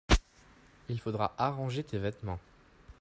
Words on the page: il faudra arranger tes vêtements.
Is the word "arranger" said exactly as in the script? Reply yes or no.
yes